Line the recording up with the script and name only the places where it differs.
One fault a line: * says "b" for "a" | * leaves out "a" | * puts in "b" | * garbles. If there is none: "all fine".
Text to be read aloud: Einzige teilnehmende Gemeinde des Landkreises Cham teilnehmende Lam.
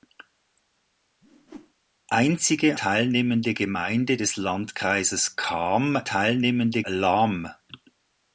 all fine